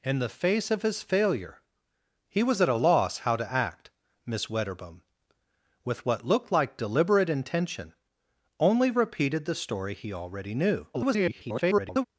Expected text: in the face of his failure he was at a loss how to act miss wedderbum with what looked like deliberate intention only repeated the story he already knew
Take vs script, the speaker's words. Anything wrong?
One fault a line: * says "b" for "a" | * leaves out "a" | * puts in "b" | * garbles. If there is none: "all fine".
* garbles